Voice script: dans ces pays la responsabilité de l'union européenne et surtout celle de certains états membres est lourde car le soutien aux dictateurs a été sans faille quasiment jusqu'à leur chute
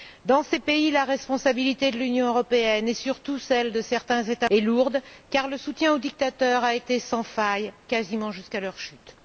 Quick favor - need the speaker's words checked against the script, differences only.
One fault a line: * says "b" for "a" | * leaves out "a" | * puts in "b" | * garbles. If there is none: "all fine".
* leaves out "membres"